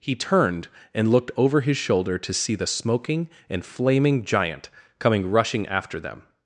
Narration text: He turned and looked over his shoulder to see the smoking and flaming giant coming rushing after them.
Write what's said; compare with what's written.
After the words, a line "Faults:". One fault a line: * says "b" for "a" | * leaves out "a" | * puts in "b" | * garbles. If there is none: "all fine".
He turned and looked over his shoulder to see the smoking and flaming giant coming rushing after them.
Faults:
all fine